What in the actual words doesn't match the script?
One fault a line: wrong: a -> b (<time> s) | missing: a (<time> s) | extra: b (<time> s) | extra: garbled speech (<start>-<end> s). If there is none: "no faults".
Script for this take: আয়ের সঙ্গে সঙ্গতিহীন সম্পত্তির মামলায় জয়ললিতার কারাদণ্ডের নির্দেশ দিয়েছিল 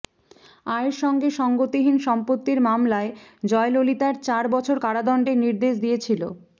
extra: চার বছর (4.2 s)